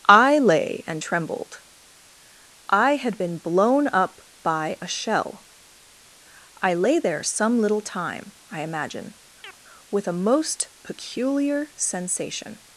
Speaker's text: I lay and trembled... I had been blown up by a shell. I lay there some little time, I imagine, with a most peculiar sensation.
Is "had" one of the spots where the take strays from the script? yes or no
no